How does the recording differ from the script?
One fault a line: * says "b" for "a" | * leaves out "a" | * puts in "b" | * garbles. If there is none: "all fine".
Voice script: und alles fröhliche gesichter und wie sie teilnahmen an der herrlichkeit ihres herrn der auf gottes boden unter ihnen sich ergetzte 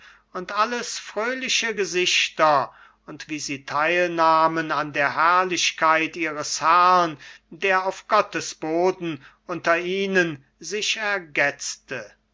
all fine